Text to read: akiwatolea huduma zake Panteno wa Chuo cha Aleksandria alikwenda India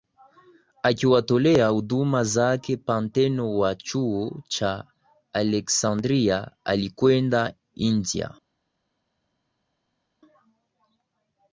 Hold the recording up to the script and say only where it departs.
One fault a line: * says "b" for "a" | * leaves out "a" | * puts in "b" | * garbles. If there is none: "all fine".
all fine